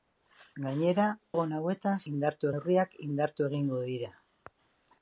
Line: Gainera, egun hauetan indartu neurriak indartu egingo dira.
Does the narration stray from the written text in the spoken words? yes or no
no